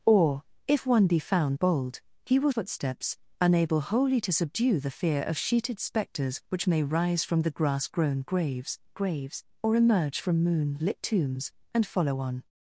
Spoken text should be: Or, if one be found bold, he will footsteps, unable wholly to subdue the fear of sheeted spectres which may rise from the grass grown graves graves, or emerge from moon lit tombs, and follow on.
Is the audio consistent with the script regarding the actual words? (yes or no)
yes